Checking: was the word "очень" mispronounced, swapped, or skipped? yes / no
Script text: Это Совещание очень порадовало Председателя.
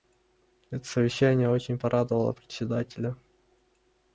no